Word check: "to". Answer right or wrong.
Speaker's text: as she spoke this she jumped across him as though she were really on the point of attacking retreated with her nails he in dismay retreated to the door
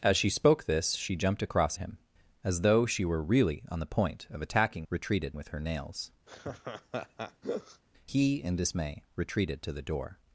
right